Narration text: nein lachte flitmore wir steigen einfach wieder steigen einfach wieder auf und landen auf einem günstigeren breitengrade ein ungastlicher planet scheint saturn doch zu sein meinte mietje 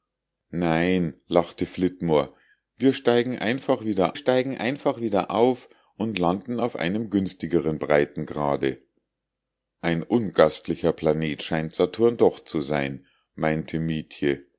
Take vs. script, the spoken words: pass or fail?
pass